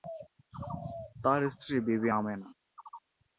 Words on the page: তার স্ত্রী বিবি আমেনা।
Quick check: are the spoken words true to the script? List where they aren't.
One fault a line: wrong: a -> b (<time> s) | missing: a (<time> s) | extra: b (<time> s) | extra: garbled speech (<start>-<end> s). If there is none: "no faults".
no faults